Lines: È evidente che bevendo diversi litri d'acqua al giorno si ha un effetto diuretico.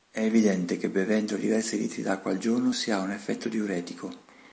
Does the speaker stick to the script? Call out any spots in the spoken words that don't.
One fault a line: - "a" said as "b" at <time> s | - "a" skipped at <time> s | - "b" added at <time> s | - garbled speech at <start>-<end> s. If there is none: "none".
none